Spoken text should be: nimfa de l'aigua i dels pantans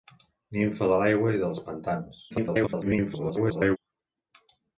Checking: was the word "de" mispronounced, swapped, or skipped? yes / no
no